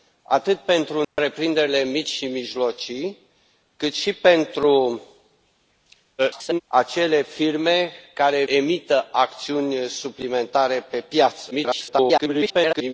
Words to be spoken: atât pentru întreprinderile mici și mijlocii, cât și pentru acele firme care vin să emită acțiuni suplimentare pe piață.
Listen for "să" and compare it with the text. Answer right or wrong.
wrong